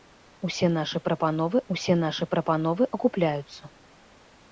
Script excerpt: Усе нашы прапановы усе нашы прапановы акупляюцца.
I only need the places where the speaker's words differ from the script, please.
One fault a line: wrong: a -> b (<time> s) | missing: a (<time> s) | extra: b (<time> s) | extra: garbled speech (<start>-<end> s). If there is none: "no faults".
no faults